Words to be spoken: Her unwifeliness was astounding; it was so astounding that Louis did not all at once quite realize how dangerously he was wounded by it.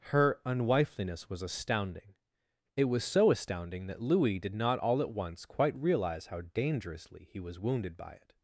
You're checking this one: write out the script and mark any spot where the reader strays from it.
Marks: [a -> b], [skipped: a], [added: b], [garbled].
Her unwifeliness was astounding; it was so astounding that Louis did not all at once quite realize how dangerously he was wounded by it.